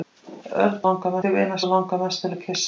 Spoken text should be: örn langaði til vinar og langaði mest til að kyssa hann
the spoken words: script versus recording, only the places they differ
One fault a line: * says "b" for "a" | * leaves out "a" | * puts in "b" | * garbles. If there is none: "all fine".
all fine